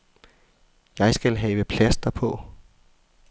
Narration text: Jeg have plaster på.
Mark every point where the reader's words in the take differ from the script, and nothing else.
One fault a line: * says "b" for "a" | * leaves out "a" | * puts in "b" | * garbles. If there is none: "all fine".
* puts in "skal"